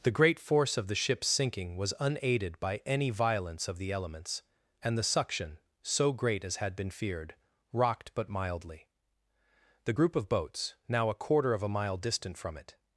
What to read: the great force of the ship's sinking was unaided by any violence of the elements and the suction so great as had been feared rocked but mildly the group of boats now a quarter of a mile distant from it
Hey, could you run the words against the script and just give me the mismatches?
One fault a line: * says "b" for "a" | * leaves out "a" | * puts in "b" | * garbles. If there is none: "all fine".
all fine